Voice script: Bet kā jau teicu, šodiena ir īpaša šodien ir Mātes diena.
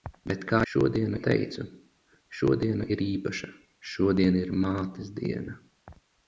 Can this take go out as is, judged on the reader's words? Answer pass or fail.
fail